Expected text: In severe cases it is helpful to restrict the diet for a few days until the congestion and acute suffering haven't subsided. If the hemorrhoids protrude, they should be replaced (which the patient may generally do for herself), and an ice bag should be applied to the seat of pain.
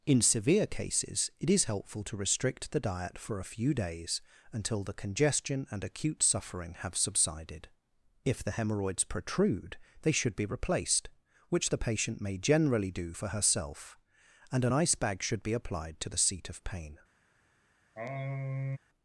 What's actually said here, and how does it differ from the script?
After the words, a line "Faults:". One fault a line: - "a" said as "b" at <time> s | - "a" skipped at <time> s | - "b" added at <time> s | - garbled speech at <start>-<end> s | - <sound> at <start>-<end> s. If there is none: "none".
In severe cases it is helpful to restrict the diet for a few days until the congestion and acute suffering have subsided. If the hemorrhoids protrude, they should be replaced (which the patient may generally do for herself), and an ice bag should be applied to the seat of pain.
Faults:
- "haven't" said as "have" at 6.7 s
- sigh at 18.0-18.8 s